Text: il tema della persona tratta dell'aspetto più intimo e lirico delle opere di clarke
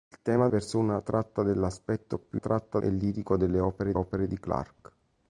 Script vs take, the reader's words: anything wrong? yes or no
yes